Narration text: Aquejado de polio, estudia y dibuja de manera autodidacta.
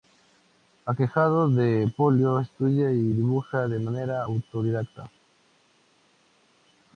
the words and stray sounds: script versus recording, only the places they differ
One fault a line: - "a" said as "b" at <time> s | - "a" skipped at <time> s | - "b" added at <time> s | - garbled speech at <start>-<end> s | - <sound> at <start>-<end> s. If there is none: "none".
none